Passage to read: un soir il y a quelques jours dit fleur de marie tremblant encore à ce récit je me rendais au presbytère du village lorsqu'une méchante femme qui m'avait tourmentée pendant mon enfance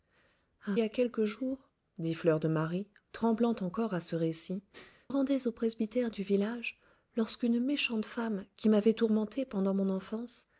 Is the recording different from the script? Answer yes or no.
yes